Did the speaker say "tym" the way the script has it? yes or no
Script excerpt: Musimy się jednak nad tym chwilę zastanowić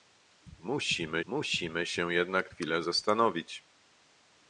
no